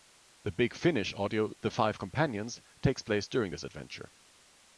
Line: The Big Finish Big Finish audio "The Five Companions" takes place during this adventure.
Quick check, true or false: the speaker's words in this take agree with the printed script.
false